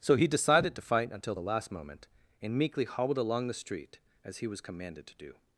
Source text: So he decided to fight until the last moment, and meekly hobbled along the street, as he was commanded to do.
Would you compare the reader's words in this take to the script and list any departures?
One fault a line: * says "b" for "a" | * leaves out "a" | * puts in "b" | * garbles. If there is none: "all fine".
all fine